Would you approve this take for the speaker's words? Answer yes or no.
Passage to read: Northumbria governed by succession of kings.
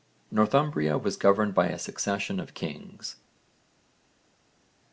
no